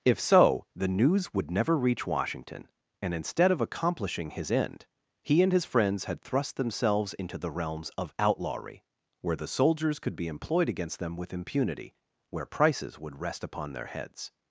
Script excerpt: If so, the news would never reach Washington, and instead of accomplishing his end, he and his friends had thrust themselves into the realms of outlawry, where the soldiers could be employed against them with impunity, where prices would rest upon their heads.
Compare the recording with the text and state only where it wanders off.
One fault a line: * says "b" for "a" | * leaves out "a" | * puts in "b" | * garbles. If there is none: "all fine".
all fine